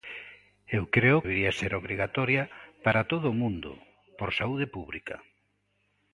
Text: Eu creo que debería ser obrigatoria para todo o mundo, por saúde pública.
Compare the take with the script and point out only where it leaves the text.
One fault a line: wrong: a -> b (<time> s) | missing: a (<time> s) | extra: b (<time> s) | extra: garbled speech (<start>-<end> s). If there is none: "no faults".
missing: que (1.2 s)